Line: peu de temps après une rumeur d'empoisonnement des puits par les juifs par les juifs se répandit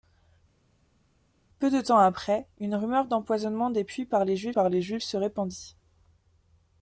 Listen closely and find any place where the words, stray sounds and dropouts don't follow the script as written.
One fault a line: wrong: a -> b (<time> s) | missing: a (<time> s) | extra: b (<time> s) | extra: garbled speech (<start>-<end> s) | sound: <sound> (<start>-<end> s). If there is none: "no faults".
no faults